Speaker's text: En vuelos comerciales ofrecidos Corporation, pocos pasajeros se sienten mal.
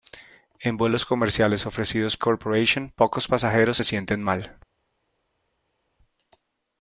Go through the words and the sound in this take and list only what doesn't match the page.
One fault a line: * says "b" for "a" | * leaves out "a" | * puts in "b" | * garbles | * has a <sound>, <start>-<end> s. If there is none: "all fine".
all fine